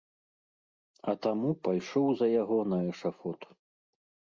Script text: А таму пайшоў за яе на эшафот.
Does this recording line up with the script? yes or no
no